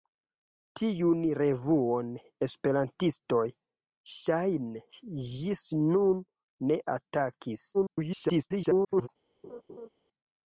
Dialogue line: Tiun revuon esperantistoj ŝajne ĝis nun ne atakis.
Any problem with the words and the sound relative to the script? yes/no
yes